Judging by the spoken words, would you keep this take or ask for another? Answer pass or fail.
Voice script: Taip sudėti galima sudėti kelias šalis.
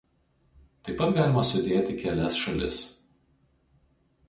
fail